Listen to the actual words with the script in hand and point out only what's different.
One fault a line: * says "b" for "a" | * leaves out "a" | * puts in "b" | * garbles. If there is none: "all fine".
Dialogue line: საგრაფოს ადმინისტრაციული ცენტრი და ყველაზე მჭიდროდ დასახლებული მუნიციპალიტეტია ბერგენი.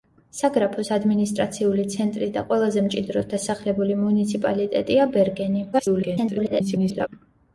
* garbles